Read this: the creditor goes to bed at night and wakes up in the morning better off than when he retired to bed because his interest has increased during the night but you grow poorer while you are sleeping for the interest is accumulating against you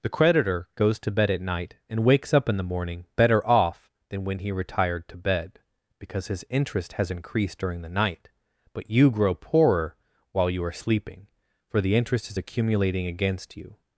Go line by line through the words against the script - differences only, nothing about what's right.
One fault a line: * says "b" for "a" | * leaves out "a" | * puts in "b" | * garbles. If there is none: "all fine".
all fine